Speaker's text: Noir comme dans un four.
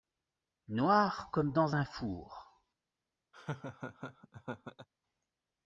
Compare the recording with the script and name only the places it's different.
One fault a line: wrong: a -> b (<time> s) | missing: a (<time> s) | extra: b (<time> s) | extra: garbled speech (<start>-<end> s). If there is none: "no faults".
no faults